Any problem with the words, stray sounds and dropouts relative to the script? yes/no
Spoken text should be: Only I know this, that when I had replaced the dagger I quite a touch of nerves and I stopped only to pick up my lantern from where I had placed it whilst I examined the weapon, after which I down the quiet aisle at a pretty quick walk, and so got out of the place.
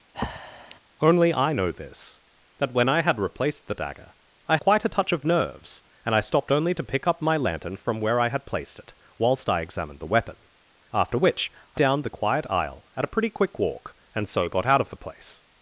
yes